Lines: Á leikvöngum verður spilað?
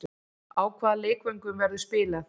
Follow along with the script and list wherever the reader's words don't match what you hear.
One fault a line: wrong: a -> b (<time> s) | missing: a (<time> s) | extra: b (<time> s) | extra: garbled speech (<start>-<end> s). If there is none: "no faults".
extra: hvaða (0.8 s)